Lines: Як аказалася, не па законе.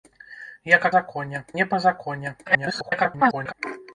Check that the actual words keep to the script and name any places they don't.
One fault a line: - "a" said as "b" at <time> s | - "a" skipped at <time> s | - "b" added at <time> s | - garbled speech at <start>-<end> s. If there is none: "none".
- "аказалася" said as "законе" at 1.0 s
- garbled speech at 2.5-3.5 s